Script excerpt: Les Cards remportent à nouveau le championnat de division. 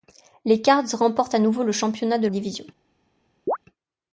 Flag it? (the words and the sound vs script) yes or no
yes